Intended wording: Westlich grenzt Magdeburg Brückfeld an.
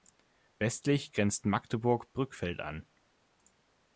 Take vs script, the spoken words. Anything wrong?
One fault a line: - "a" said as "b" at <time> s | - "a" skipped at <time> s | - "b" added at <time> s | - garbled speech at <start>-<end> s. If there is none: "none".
none